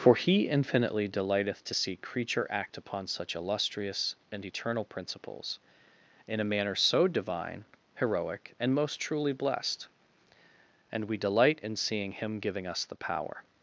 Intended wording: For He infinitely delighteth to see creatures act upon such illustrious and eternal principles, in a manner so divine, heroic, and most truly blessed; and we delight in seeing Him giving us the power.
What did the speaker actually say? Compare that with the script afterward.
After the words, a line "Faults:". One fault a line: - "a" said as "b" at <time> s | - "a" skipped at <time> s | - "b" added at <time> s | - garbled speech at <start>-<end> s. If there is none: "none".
For He infinitely delighteth to see creature act upon such illustrious and eternal principles, in a manner so divine, heroic, and most truly blessed; and we delight in seeing Him giving us the power.
Faults:
- "creatures" said as "creature" at 2.0 s